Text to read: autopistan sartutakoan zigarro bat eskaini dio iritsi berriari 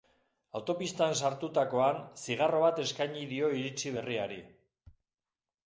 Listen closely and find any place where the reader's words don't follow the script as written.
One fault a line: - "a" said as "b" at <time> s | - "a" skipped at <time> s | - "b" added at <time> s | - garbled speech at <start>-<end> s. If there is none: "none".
none